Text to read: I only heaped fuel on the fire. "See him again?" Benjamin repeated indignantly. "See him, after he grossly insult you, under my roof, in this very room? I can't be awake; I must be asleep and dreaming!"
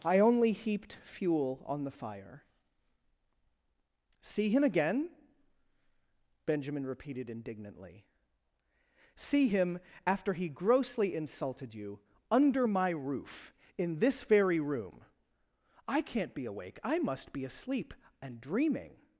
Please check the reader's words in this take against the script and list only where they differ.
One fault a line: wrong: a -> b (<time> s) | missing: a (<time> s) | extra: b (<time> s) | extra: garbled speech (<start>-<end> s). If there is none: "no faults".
wrong: insult -> insulted (11.1 s)